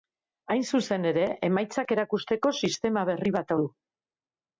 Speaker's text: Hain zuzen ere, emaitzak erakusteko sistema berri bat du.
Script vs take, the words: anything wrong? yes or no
no